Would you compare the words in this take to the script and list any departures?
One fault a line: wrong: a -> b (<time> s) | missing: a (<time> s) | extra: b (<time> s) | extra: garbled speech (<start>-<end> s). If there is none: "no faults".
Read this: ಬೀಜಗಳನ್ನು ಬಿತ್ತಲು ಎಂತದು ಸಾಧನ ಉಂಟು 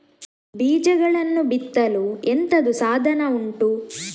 no faults